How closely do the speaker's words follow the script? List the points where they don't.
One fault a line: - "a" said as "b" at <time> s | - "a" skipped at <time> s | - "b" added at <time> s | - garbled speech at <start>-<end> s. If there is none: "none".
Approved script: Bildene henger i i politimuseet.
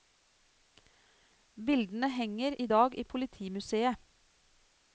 - "dag" added at 2.6 s